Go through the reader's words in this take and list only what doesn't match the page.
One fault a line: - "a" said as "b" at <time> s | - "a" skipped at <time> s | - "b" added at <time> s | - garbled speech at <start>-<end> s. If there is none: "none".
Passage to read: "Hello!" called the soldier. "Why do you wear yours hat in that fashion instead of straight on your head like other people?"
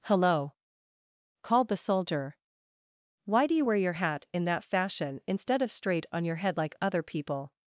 - "yours" said as "your" at 3.7 s